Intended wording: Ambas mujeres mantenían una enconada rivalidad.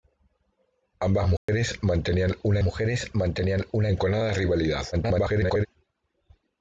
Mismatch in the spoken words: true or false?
true